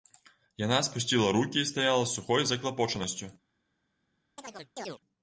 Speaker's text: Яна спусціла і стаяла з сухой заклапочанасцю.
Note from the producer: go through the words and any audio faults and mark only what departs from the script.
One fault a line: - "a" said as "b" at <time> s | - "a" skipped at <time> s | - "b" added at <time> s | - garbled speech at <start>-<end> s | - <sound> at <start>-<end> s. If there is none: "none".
- "рукі" added at 1.3 s
- chirp at 4.4-5.0 s